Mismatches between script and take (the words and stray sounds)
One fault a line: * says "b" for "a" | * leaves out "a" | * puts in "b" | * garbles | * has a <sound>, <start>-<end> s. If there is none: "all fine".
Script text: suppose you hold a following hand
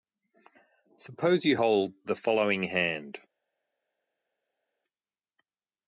* says "the" for "a"